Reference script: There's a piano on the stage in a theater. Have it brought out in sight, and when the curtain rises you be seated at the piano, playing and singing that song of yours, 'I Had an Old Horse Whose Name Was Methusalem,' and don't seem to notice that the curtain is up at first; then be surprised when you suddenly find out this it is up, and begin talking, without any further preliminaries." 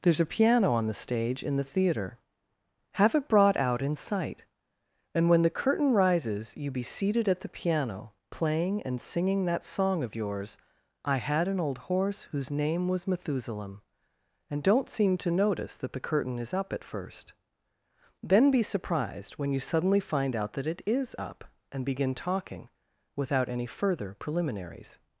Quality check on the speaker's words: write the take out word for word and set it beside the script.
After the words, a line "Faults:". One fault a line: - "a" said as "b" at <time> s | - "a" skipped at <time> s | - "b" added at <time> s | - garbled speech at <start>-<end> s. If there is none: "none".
There's a piano on the stage in the theater. Have it brought out in sight, and when the curtain rises you be seated at the piano, playing and singing that song of yours, 'I Had an Old Horse Whose Name Was Methusalem,' and don't seem to notice that the curtain is up at first; then be surprised when you suddenly find out that it is up, and begin talking, without any further preliminaries."
Faults:
- "a" said as "the" at 1.6 s
- "this" said as "that" at 20.5 s